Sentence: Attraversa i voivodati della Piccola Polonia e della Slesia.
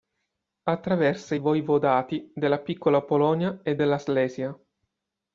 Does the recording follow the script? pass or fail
pass